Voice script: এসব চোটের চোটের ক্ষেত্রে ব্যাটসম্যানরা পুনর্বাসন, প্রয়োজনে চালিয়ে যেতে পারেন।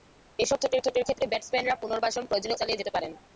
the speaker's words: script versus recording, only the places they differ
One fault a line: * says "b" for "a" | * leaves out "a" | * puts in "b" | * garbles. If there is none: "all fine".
all fine